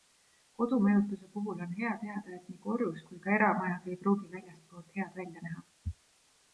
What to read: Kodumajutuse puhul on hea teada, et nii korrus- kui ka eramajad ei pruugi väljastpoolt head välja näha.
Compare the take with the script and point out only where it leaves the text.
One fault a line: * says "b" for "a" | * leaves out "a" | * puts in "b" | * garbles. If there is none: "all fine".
all fine